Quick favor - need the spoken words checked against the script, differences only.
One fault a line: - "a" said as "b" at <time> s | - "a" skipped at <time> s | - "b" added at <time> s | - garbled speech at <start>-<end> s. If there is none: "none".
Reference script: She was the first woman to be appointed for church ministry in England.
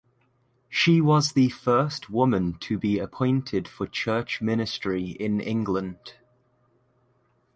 none